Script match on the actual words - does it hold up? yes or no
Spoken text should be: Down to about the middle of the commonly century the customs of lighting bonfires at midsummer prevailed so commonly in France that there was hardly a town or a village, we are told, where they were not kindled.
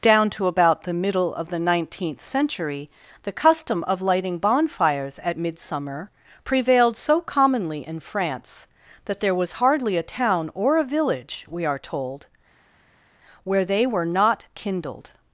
no